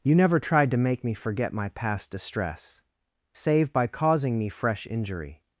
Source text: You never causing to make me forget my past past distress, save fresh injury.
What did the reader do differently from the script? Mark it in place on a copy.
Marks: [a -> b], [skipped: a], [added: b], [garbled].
You never [causing -> tried] to make me forget my past [skipped: past] distress, save [added: by causing me] fresh injury.